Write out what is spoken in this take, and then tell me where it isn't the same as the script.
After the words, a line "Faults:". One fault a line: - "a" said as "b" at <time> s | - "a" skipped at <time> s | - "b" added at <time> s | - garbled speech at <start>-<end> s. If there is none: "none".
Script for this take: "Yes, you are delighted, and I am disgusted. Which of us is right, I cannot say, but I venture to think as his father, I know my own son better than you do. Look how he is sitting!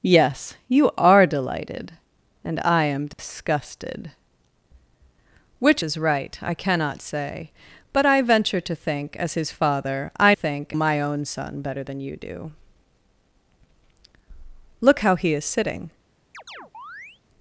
"Yes, you are delighted, and I am disgusted. Which is right, I cannot say, but I venture to think as his father, I think my own son better than you do. Look how he is sitting!
Faults:
- "of us" skipped at 5.8 s
- "know" said as "think" at 10.3 s